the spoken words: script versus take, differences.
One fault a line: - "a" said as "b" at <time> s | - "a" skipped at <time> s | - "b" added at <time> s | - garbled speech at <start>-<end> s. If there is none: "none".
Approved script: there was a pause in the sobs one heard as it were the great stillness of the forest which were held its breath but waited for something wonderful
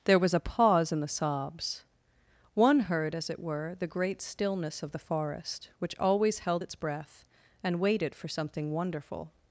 - "were" said as "always" at 6.0 s
- "but" said as "and" at 7.6 s